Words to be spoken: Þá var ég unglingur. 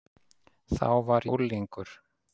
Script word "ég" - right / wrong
wrong